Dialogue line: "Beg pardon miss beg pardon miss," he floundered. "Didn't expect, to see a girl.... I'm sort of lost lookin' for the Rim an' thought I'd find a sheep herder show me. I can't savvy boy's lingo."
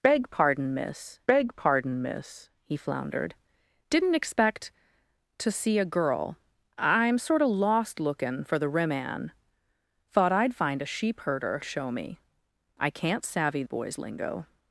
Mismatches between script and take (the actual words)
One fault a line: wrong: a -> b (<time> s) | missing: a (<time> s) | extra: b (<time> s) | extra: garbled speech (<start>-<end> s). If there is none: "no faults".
no faults